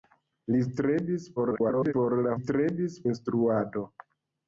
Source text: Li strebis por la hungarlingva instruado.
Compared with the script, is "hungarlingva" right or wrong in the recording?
wrong